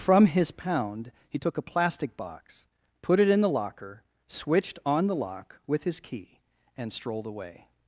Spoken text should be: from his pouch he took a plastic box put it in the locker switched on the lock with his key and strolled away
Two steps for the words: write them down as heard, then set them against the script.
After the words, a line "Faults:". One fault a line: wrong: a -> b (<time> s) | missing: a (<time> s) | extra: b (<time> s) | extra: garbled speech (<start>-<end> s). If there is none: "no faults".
from his pound he took a plastic box put it in the locker switched on the lock with his key and strolled away
Faults:
wrong: pouch -> pound (0.5 s)